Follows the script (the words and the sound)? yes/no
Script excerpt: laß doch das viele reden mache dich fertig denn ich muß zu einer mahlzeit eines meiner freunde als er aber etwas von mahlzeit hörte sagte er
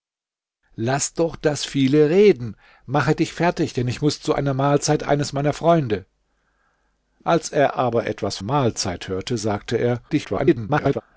no